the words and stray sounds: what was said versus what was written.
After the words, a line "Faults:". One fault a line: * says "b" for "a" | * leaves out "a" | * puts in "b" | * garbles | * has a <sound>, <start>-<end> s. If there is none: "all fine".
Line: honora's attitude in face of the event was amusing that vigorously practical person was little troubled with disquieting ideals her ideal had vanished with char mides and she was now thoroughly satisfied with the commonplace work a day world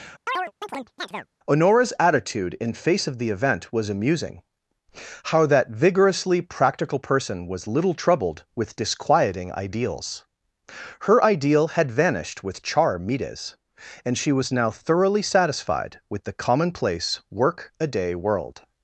honora's attitude in face of the event was amusing how that vigorously practical person was little troubled with disquieting ideals her ideal had vanished with char mides and she was now thoroughly satisfied with the commonplace work a day world
Faults:
* has a chirp, 0.3-1.3 s
* puts in "how"